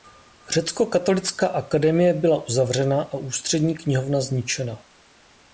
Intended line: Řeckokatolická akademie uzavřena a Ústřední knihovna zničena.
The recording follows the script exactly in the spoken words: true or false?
false